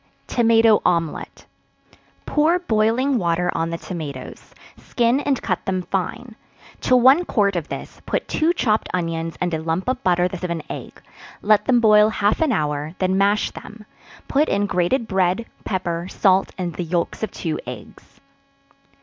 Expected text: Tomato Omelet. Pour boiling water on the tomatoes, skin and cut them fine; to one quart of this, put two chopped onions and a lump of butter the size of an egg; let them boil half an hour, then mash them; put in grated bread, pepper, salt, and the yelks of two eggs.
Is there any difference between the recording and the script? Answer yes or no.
yes